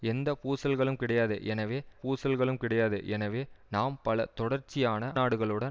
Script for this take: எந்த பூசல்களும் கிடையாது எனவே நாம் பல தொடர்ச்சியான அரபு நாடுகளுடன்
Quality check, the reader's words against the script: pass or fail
fail